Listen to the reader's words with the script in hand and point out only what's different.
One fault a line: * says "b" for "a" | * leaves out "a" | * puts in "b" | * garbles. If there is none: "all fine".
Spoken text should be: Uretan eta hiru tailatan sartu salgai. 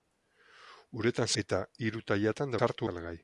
all fine